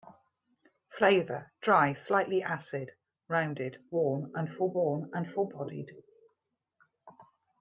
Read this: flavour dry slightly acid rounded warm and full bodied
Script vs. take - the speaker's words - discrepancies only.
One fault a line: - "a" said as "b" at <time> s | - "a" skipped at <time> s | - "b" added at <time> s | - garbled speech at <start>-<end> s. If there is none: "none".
- "warm and full" added at 4.7 s